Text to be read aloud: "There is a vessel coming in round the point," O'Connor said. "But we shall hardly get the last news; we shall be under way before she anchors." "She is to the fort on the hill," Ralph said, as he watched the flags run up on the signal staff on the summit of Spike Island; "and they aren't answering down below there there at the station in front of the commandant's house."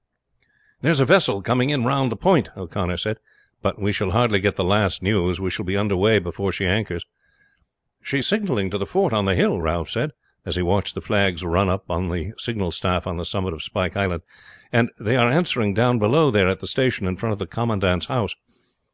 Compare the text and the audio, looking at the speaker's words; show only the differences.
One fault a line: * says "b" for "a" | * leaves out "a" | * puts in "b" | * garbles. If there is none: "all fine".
* puts in "signaling"
* says "are" for "aren't"
* leaves out "there"